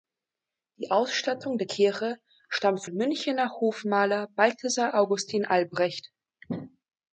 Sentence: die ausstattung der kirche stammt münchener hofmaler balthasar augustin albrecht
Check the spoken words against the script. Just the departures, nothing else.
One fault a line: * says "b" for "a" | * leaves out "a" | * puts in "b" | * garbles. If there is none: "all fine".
all fine